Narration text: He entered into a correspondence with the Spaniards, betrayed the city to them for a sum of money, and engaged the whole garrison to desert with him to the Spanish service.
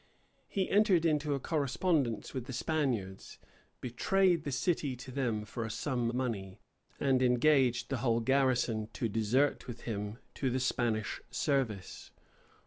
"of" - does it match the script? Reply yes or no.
no